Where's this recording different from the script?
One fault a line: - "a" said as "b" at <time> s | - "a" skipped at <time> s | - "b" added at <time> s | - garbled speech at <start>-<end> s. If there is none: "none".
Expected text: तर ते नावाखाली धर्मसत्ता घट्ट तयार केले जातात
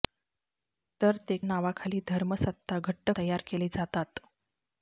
none